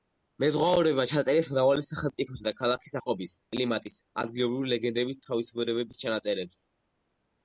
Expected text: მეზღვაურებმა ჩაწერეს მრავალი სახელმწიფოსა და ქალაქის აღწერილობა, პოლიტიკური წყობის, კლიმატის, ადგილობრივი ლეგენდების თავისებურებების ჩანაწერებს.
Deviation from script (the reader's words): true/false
true